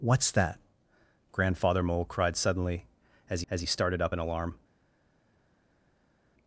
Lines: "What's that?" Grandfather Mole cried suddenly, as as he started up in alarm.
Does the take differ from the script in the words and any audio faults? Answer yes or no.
no